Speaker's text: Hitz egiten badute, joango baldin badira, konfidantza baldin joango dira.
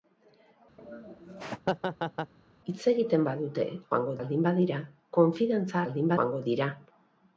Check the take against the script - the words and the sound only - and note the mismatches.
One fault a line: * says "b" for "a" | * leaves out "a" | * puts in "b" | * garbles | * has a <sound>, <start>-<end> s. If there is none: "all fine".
* has a laugh, 0.8-2.3 s